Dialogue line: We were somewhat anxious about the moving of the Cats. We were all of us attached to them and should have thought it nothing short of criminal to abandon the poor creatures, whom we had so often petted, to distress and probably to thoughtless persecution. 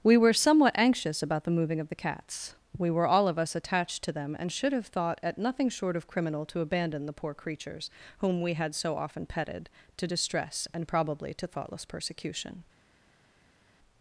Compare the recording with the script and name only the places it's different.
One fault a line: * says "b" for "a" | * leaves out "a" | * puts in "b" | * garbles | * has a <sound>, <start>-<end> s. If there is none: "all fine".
* says "at" for "it"